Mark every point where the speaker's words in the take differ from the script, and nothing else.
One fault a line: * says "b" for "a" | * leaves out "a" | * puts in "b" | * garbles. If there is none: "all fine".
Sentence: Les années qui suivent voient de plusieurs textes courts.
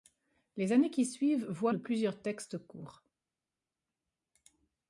all fine